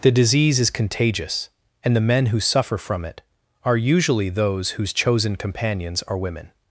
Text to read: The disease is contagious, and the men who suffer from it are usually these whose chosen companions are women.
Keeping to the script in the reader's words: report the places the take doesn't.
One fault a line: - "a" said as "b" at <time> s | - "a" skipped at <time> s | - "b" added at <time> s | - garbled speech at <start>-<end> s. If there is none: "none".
- "these" said as "those" at 4.3 s